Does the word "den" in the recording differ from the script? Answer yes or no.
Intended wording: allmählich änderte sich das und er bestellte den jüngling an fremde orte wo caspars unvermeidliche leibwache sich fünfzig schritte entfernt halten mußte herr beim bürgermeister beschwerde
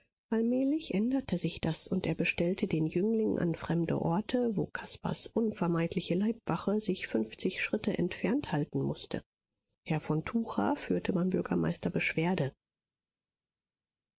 no